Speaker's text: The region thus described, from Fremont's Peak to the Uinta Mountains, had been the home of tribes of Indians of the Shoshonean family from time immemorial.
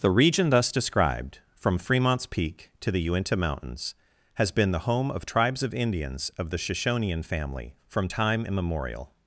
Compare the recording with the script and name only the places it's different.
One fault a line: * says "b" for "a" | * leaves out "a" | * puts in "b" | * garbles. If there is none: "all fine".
* says "has" for "had"